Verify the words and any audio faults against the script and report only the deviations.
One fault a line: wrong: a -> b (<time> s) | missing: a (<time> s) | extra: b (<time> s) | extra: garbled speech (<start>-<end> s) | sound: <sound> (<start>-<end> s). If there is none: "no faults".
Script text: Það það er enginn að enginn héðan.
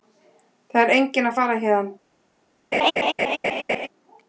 missing: það (0.8 s)
wrong: enginn -> fara (1.4 s)
sound: laugh (2.7-3.9 s)